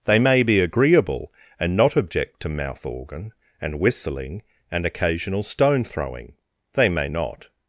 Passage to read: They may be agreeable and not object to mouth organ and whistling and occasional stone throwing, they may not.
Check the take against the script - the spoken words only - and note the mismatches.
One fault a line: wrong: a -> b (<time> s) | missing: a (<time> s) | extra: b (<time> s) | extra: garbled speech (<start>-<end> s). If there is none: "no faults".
no faults